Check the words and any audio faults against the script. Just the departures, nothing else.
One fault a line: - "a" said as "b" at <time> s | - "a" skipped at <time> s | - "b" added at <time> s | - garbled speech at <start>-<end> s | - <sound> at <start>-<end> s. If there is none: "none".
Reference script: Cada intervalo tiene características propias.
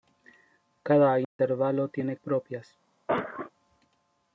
- dropout at 1.2-1.4 s
- "características" skipped at 2.2 s
- cough at 3.1-3.5 s